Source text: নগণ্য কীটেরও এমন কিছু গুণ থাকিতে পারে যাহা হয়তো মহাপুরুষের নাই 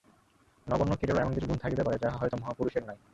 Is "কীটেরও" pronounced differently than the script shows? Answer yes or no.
no